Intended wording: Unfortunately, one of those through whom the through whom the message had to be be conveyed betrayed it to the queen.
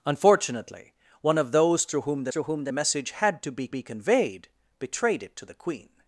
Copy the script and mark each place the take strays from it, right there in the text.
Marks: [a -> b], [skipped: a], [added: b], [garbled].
Unfortunately, one of those through whom the through whom the message had to be be conveyed betrayed it to the queen.